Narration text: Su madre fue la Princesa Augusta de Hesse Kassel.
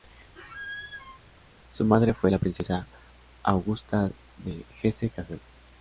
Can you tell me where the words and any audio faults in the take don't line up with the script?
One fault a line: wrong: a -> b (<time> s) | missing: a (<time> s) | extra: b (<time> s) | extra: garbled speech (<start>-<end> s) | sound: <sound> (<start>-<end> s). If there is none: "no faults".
sound: squeak (0.4-1.2 s)